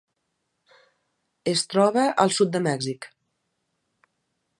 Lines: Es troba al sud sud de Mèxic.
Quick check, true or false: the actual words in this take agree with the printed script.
false